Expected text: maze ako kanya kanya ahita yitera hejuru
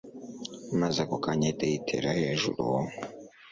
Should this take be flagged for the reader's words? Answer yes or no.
yes